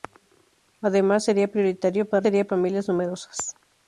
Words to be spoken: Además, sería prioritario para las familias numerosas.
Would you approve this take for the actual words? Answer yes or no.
no